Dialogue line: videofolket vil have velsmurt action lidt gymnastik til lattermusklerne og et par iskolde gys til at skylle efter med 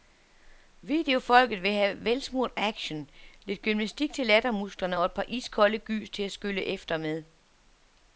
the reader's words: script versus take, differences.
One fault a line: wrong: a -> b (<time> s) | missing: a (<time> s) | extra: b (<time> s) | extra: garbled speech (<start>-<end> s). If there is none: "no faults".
no faults